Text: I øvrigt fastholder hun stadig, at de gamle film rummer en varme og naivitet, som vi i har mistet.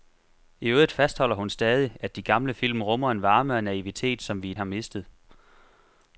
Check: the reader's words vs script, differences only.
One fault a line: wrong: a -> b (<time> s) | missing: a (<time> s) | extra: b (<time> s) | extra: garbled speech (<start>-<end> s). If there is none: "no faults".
no faults